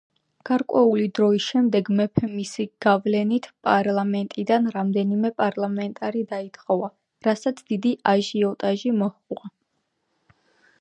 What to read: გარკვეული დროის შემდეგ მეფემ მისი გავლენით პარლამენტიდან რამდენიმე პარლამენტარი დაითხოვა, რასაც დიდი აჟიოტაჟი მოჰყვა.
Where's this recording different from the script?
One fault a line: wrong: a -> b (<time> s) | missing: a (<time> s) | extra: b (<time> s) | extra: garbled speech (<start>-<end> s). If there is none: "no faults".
no faults